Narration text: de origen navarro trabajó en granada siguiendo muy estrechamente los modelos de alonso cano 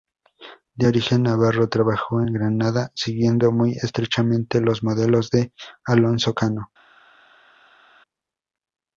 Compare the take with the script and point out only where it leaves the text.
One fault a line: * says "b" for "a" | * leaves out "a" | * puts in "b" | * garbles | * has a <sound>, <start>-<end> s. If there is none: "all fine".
all fine